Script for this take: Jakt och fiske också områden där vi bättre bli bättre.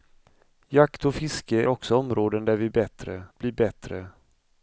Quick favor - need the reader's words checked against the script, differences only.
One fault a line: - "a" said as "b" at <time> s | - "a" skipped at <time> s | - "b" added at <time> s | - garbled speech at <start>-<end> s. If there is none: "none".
none